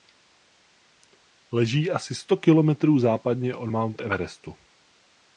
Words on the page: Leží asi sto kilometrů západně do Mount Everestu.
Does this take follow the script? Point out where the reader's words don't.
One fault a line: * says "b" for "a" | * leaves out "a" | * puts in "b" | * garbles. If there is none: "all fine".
* says "od" for "do"